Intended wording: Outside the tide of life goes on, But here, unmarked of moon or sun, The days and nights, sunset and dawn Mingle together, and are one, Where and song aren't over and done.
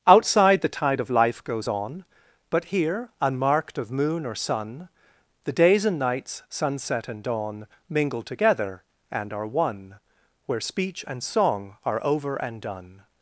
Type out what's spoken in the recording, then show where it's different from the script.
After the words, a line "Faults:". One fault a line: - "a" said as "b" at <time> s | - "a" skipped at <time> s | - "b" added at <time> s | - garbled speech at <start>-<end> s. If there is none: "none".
Outside the tide of life goes on, But here, unmarked of moon or sun, The days and nights, sunset and dawn Mingle together, and are one, Where speech and song are over and done.
Faults:
- "speech" added at 10.6 s
- "aren't" said as "are" at 11.8 s